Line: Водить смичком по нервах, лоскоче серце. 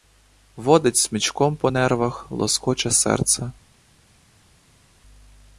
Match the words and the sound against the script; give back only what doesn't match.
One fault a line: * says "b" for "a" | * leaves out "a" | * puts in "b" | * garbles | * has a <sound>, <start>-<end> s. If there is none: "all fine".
all fine